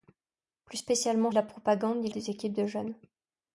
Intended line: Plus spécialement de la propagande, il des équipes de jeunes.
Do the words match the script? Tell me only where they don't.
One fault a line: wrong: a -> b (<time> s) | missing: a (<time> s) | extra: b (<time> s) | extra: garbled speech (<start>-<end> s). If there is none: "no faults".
no faults